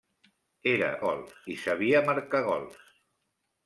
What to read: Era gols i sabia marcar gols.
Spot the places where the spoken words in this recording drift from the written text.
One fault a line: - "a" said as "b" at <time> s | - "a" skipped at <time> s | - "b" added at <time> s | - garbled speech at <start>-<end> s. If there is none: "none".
none